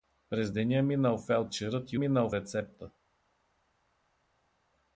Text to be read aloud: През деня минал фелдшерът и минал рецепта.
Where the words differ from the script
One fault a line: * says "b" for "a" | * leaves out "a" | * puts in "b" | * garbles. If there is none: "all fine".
all fine